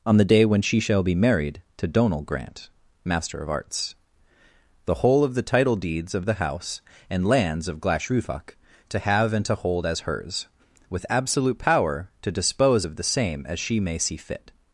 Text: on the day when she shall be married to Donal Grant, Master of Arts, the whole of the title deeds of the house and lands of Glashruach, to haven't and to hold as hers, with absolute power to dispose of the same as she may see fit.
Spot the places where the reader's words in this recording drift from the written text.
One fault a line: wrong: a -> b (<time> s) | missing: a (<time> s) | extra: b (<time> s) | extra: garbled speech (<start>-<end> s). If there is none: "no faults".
wrong: haven't -> have (9.0 s)